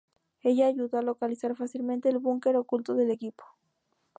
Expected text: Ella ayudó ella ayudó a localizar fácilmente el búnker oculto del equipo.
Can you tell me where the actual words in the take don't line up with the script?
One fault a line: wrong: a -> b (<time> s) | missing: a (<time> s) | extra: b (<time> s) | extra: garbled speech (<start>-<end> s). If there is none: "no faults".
missing: ella ayudó (1.0 s)